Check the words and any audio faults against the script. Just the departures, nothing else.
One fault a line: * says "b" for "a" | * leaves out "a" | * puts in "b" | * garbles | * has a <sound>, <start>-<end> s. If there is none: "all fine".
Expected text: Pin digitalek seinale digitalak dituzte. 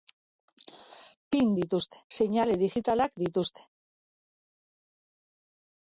* says "dituzte" for "digitalek"